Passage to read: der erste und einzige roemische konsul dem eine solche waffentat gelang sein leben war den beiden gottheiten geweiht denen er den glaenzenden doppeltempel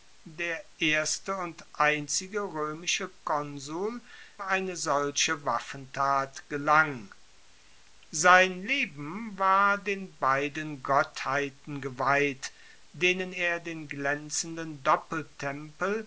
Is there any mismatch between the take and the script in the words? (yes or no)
yes